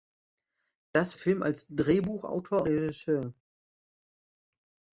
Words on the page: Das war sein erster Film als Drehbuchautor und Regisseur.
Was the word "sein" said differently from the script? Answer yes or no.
yes